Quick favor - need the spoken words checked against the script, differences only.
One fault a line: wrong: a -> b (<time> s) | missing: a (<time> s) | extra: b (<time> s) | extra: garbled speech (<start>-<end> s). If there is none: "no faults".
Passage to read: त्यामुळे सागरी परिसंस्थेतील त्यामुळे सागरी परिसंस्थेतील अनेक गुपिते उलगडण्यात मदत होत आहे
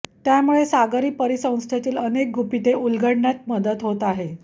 missing: त्यामुळे सागरी परिसंस्थेतील (2.0 s)